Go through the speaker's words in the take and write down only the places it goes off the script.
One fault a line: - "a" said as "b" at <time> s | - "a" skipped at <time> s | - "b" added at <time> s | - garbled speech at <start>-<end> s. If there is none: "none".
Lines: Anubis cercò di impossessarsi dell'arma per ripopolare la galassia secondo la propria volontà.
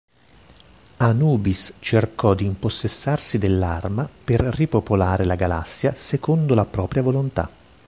none